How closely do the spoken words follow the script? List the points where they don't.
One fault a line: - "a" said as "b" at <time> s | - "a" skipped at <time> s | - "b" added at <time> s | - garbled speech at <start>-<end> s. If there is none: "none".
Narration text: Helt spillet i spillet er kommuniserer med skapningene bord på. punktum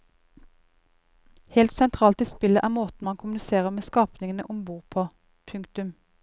- "spillet" said as "sentralt" at 1.7 s
- "måten man" added at 2.8 s
- "om" added at 4.5 s